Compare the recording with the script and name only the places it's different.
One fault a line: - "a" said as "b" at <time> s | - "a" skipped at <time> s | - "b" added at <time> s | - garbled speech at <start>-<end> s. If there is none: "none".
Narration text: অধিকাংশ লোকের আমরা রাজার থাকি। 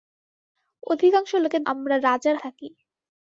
none